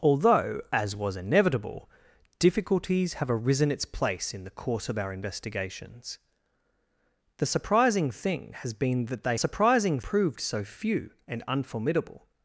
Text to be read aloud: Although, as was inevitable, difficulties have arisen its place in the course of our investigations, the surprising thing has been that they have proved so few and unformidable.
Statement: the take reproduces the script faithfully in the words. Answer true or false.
false